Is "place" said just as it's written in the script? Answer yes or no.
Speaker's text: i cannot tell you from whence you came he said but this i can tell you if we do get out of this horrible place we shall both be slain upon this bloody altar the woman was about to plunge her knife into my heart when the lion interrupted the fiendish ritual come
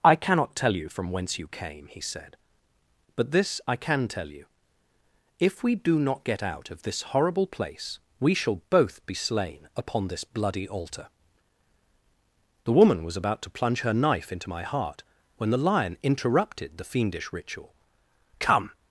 yes